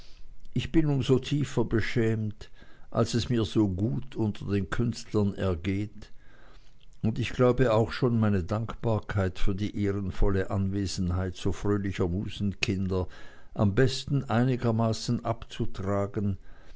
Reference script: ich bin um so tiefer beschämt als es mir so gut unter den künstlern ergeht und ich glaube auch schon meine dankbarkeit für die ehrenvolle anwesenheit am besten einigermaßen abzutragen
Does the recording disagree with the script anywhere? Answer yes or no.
yes